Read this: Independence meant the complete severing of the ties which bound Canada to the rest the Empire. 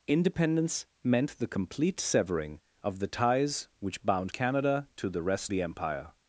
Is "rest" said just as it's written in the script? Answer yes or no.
yes